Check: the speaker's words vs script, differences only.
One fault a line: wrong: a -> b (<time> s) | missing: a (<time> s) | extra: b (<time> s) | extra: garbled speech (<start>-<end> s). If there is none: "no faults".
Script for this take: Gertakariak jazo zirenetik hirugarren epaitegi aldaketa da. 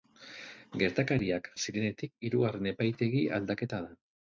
missing: jazo (1.5 s)